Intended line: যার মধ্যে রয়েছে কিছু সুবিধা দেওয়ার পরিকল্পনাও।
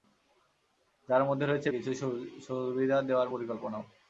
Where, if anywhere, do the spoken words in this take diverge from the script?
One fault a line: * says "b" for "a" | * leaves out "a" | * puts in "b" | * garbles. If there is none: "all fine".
all fine